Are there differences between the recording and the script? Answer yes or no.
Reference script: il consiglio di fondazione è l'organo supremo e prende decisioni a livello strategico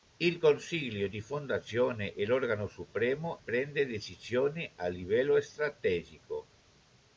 yes